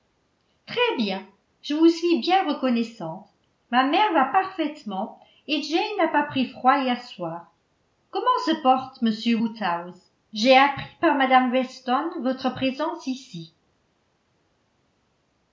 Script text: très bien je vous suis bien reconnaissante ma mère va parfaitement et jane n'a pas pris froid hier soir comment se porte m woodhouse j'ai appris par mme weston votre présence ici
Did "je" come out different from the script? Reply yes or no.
no